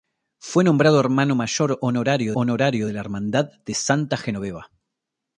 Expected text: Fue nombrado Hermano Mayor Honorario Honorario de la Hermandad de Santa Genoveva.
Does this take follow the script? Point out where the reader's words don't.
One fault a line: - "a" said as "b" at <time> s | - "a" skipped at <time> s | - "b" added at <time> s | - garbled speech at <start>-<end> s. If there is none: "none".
none